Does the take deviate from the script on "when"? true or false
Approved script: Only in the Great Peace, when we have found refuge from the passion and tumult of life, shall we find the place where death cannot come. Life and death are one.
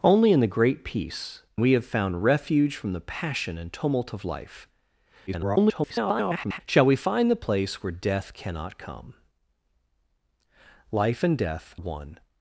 true